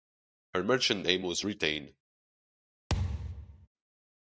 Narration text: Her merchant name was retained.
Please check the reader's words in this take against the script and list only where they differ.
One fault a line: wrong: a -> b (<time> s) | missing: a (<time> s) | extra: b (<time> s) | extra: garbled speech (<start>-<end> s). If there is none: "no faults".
no faults